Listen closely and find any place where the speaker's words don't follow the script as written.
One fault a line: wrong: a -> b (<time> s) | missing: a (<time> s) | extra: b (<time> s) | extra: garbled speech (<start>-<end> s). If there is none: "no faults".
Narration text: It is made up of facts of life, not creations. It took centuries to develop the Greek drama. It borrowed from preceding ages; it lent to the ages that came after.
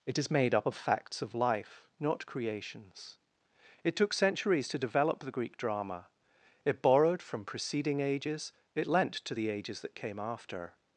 no faults